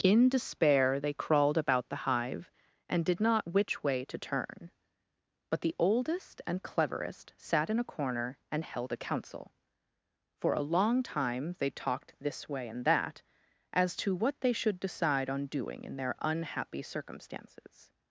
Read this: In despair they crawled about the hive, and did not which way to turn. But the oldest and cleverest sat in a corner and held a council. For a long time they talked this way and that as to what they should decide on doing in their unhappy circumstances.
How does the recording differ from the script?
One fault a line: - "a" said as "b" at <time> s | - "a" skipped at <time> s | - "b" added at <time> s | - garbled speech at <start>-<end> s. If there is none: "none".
none